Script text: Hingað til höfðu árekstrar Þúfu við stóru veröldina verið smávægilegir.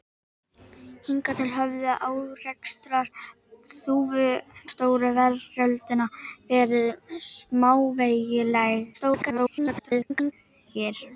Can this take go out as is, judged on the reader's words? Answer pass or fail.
fail